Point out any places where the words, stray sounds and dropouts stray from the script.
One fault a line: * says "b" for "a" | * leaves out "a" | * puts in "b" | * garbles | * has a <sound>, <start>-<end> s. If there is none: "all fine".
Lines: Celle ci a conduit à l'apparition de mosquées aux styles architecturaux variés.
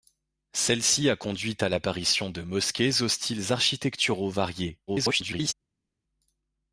* garbles